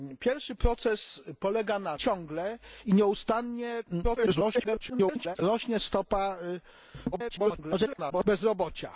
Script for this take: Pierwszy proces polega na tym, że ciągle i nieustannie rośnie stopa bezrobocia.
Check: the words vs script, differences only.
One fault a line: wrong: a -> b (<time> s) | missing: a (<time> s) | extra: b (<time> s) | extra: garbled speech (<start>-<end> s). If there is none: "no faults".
missing: tym że (2.0 s)
extra: garbled speech (4.0-5.4 s)
extra: garbled speech (7.1-8.2 s)